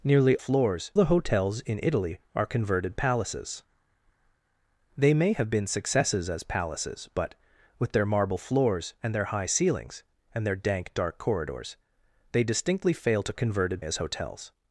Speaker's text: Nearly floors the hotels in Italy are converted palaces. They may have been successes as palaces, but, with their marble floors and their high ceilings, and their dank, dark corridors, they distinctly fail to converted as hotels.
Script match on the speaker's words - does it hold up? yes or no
yes